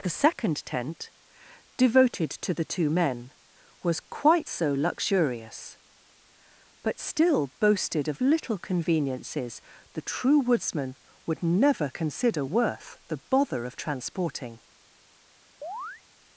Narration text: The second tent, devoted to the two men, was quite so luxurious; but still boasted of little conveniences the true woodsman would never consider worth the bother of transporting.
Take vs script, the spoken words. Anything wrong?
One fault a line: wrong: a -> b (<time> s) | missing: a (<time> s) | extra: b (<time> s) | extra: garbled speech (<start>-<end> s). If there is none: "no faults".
no faults